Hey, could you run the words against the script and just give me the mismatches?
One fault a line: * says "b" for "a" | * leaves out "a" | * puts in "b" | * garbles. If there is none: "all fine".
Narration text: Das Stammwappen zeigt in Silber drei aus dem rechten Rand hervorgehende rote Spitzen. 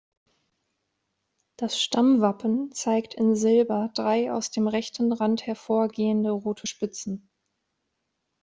all fine